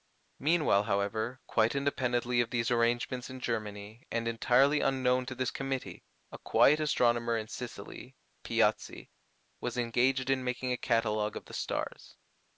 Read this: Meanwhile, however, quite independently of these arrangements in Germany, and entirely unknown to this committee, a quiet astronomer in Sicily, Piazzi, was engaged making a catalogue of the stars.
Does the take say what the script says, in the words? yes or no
no